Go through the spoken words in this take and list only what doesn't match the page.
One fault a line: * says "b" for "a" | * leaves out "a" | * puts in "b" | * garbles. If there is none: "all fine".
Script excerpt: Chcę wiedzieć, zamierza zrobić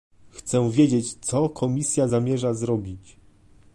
* puts in "co Komisja"